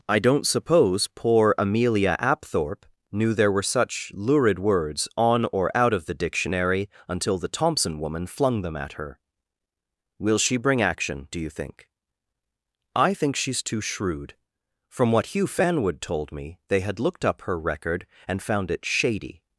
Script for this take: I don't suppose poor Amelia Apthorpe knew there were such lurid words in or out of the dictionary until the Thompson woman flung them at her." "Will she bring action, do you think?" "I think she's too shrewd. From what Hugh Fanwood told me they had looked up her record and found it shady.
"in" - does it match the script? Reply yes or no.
no